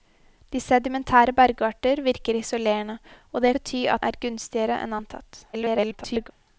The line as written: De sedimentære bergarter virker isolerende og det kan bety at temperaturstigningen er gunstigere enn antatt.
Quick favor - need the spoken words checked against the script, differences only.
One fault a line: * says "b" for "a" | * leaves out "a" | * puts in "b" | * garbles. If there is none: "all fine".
* leaves out "kan"
* leaves out "temperaturstigningen"
* garbles